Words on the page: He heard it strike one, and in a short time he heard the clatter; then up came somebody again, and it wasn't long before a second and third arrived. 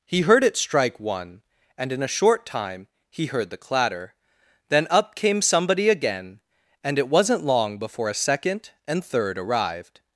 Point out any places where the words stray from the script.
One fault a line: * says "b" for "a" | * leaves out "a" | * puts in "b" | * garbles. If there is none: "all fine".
all fine